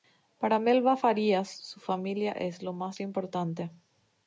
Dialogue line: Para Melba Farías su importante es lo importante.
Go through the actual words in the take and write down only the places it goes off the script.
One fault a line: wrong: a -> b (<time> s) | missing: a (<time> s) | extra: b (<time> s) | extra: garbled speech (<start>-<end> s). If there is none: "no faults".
wrong: importante -> familia (1.8 s)
extra: más (2.7 s)